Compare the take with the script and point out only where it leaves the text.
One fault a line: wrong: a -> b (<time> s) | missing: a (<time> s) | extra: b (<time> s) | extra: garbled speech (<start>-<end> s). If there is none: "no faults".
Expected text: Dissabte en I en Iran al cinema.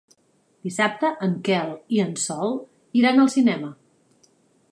extra: Quel (1.5 s)
extra: Sol (2.2 s)